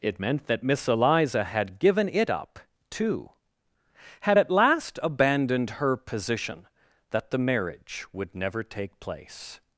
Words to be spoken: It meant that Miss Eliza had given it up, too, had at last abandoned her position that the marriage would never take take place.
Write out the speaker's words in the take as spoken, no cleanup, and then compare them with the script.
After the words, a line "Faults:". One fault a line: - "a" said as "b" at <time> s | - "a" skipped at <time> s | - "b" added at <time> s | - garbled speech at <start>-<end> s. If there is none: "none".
It meant that Miss Eliza had given it up, too, had at last abandoned her position that the marriage would never take place.
Faults:
- "take" skipped at 9.0 s